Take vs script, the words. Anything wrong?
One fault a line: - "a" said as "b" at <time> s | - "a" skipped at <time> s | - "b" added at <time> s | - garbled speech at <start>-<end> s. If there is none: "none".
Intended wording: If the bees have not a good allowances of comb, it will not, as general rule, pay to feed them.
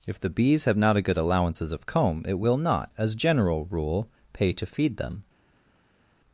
none